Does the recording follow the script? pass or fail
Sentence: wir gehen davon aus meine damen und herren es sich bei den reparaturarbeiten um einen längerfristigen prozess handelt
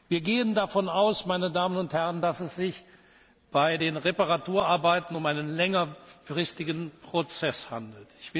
fail